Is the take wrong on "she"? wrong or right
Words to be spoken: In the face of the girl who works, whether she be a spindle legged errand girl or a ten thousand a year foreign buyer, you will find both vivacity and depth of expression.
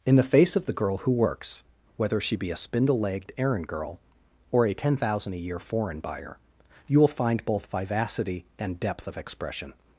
right